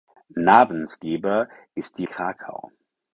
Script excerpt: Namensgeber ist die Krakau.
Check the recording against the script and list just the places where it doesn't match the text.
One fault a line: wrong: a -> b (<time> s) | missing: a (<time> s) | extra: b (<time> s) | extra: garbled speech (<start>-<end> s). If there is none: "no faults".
no faults